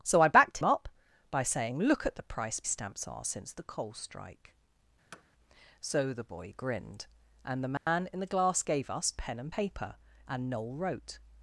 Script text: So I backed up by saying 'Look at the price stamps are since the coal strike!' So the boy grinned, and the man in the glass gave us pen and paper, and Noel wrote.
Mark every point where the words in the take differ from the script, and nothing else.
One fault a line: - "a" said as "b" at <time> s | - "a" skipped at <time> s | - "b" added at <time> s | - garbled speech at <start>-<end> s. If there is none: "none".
none